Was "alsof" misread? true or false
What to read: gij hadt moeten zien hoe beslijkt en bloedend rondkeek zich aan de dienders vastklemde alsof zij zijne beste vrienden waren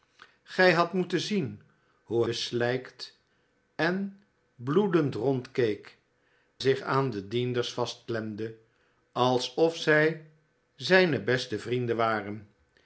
false